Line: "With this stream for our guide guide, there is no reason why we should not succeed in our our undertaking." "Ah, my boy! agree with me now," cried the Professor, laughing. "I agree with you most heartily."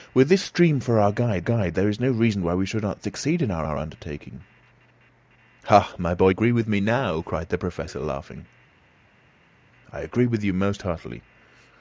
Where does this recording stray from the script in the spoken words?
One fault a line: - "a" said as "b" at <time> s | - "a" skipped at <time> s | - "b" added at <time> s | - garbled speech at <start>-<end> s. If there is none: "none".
none